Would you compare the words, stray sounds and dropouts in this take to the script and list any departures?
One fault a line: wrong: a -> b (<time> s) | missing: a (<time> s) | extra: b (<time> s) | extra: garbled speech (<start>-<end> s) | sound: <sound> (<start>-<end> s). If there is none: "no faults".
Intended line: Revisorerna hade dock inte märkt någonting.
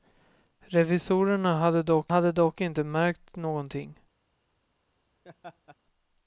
extra: hade dock (2.1 s)
sound: laugh (5.2-5.8 s)